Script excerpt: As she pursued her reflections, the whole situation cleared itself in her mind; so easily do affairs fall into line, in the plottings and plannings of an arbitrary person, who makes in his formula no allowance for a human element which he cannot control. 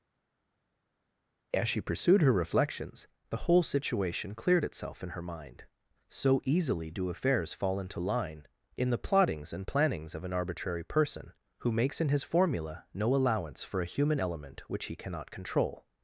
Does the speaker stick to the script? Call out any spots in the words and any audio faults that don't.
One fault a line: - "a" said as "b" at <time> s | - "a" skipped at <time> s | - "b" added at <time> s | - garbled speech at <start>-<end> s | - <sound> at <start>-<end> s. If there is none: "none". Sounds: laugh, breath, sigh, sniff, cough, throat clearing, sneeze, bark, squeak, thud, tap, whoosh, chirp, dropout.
none